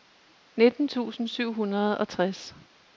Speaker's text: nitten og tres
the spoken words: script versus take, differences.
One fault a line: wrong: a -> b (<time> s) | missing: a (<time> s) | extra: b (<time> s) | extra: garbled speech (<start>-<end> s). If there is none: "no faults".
extra: tusind syv hundrede (0.9 s)